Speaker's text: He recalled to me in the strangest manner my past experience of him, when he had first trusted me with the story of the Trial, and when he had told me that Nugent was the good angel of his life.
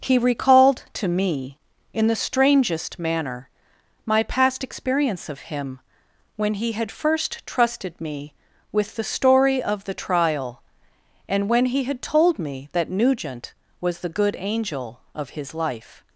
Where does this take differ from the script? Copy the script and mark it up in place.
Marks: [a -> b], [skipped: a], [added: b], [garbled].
He recalled to me in the strangest manner my past experience of him, when he had first trusted me with the story of the Trial, and when he had told me that Nugent was the good angel of his life.